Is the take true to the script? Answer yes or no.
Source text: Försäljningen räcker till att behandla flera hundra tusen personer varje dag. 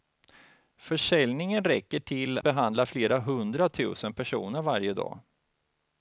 no